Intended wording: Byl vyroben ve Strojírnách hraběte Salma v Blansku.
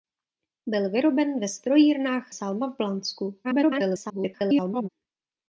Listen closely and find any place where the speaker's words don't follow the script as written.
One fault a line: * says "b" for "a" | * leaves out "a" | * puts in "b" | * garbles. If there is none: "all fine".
* leaves out "hraběte"
* garbles